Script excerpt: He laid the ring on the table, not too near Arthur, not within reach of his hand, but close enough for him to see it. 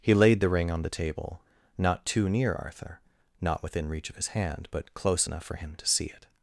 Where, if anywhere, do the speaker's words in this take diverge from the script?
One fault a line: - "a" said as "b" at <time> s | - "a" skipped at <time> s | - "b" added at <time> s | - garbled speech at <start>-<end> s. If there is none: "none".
none